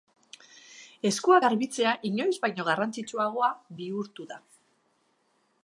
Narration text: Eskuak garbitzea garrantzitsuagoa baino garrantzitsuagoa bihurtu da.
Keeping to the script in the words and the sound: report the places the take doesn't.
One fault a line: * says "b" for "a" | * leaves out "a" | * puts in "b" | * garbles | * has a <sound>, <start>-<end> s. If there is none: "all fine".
* says "inoiz" for "garrantzitsuagoa"